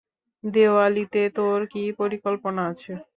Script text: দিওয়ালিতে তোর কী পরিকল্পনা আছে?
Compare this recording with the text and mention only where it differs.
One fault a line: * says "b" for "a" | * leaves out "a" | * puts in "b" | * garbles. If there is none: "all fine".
all fine